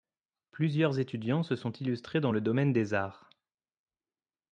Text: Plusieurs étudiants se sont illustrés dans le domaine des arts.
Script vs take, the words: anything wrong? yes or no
no